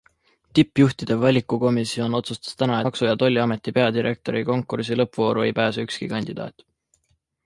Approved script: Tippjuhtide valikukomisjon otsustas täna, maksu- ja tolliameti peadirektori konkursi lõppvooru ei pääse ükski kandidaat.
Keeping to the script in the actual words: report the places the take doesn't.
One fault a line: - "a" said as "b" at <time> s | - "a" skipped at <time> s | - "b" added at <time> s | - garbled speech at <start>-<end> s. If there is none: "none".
none